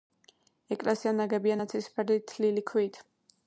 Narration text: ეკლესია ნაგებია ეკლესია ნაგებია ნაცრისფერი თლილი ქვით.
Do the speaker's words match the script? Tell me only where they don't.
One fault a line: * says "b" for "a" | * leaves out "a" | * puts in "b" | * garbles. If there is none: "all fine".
* leaves out "ეკლესია ნაგებია"